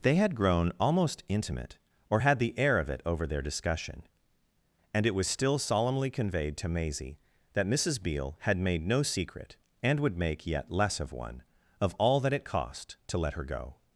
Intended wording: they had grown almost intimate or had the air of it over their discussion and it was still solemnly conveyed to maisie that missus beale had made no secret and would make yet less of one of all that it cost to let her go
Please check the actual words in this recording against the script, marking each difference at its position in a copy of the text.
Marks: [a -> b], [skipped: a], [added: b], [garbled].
they had grown almost intimate or had the air of it over their discussion and it was still solemnly conveyed to maisie that missus beale had made no secret and would make yet less of one of all that it cost to let her go